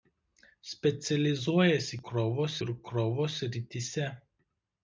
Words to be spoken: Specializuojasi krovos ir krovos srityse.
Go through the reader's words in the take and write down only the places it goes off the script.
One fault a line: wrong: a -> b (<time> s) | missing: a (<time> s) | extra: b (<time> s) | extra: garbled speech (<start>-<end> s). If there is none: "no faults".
no faults